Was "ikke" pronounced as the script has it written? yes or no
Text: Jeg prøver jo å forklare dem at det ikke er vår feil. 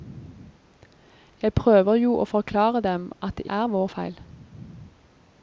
no